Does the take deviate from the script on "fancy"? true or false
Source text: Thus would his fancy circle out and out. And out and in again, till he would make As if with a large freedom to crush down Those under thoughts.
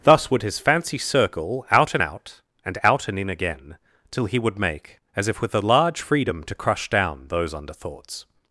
false